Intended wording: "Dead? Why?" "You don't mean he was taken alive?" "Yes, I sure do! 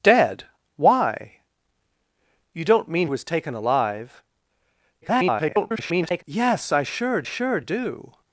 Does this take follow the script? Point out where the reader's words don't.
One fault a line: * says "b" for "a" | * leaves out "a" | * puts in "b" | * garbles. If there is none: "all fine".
* leaves out "he"
* garbles
* puts in "sure"